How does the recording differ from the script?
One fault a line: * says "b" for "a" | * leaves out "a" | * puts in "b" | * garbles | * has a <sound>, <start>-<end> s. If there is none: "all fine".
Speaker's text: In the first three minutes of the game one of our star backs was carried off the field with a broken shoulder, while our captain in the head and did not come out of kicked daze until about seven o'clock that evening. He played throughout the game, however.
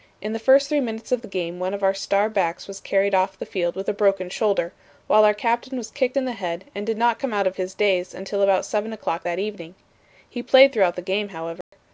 * puts in "was kicked"
* says "his" for "kicked"
* has a dropout, 11.6-11.7 s